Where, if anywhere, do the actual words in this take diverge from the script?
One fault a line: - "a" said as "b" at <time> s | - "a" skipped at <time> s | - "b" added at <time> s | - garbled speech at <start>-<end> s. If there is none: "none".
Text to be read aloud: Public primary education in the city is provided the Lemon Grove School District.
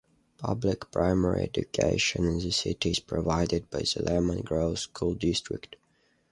- "by" added at 3.7 s